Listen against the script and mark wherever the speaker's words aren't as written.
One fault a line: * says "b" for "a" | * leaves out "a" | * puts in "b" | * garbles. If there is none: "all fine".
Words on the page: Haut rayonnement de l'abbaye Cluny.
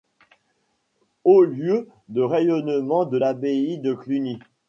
* puts in "lieu de"
* puts in "de"